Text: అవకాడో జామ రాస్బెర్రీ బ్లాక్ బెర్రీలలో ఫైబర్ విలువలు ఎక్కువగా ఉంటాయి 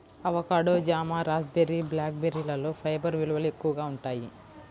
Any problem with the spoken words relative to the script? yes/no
no